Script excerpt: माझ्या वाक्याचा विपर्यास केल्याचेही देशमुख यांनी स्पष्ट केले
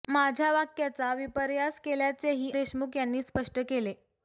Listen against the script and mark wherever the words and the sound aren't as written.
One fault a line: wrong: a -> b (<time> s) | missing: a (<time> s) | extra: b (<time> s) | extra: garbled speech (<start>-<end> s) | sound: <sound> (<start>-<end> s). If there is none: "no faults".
no faults